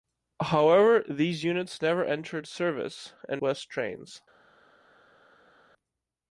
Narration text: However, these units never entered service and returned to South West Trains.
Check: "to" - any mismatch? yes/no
yes